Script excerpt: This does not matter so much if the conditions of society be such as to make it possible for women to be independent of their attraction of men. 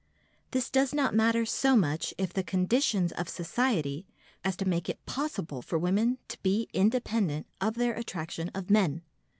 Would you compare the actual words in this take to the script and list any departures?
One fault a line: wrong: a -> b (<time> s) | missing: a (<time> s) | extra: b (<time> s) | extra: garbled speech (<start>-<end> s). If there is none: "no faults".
missing: be such (4.1 s)